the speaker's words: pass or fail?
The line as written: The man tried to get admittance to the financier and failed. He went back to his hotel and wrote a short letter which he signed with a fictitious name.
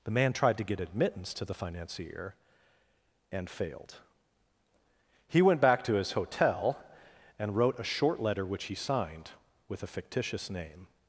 pass